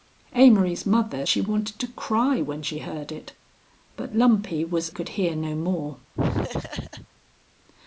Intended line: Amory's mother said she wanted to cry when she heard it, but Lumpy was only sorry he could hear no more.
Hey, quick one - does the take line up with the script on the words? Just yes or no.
no